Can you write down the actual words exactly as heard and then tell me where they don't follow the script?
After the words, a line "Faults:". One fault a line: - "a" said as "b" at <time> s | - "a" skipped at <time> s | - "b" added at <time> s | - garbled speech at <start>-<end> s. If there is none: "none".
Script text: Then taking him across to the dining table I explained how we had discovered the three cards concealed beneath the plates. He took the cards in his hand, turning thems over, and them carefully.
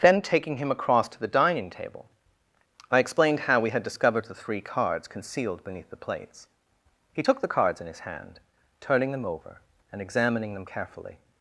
Then taking him across to the dining table I explained how we had discovered the three cards concealed beneath the plates. He took the cards in his hand, turning them over, and examining them carefully.
Faults:
- "thems" said as "them" at 9.1 s
- "examining" added at 10.0 s